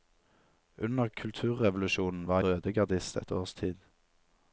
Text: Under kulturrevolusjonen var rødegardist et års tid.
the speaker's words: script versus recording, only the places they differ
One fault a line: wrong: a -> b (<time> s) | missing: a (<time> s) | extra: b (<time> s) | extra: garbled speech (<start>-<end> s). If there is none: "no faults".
no faults